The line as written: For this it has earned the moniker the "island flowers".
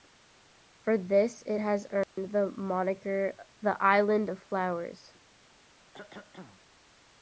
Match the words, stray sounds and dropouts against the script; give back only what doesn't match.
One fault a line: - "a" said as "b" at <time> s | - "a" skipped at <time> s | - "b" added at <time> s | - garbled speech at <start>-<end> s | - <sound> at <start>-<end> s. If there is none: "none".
- dropout at 2.0-2.2 s
- "of" added at 4.3 s
- cough at 5.9-6.6 s